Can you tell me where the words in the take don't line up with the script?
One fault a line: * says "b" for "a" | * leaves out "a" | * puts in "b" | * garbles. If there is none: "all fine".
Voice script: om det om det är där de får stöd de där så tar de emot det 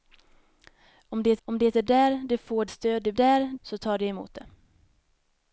all fine